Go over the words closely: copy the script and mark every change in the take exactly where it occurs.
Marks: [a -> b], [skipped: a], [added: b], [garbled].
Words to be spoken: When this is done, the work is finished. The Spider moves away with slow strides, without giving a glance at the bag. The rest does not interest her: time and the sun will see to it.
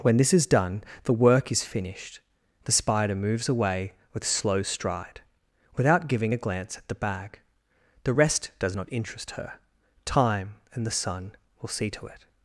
When this is done, the work is finished. The Spider moves away with slow [strides, -> stride] without giving a glance at the bag. The rest does not interest her: time and the sun will see to it.